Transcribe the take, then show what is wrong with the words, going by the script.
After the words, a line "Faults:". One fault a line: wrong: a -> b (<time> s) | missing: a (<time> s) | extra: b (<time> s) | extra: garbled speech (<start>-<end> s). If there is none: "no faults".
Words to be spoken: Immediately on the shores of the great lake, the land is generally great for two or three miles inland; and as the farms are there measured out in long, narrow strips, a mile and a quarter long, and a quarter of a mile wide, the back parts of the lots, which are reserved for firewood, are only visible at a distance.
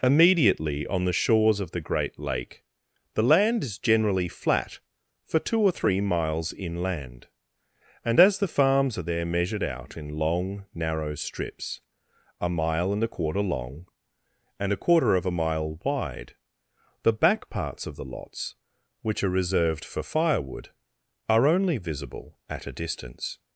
Immediately on the shores of the great lake, the land is generally flat for two or three miles inland; and as the farms are there measured out in long, narrow strips, a mile and a quarter long, and a quarter of a mile wide, the back parts of the lots, which are reserved for firewood, are only visible at a distance.
Faults:
wrong: great -> flat (4.3 s)